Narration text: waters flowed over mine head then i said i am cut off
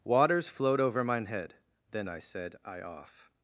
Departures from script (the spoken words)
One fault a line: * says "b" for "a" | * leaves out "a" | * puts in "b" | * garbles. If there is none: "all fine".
* leaves out "am cut"